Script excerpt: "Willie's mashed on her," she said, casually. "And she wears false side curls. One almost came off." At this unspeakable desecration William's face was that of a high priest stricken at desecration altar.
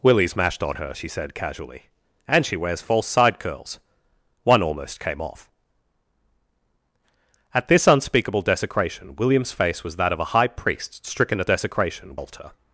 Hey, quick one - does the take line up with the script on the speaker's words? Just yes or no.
yes